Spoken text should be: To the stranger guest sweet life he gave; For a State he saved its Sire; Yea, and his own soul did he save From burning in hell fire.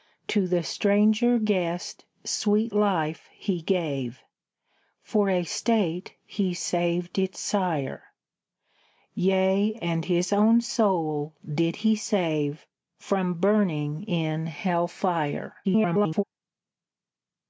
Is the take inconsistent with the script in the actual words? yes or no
yes